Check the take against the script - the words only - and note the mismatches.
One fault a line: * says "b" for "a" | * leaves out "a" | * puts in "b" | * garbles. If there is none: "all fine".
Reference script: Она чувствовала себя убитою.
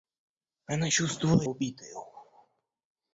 * leaves out "себя"